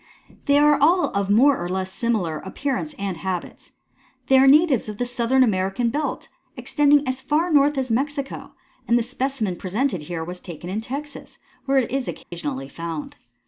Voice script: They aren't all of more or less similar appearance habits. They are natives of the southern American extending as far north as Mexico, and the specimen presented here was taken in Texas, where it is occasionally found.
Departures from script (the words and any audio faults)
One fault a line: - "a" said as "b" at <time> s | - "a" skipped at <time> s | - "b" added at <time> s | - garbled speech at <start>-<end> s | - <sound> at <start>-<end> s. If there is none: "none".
- "aren't" said as "are" at 0.6 s
- "and" added at 3.0 s
- "belt" added at 5.9 s
- dropout at 12.2-12.3 s